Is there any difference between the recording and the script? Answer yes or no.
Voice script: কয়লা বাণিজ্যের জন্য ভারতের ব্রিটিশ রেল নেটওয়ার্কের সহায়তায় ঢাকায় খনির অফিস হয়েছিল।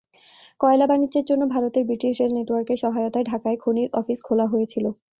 yes